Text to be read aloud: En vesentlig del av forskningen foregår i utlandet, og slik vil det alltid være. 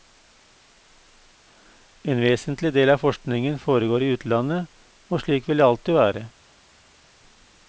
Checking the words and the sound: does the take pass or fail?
pass